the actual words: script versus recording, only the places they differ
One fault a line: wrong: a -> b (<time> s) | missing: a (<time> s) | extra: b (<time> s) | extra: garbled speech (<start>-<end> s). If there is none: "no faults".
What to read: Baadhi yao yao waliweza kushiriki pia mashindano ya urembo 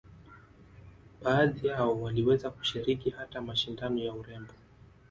missing: yao (2.0 s)
wrong: pia -> hata (3.1 s)